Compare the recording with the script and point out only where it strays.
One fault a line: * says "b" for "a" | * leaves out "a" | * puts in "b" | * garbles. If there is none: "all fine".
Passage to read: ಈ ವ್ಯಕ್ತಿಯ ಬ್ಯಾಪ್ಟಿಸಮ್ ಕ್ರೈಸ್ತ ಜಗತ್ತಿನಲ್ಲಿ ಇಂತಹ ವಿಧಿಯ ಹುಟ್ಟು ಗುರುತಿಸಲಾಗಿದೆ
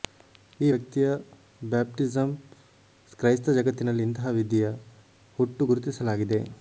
all fine